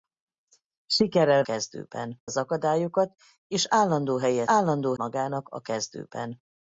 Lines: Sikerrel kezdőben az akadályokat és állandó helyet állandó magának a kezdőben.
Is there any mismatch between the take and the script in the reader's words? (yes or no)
no